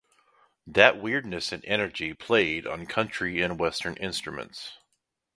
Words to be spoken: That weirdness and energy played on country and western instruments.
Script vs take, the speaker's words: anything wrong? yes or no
no